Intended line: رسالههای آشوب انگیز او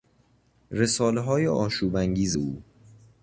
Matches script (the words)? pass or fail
pass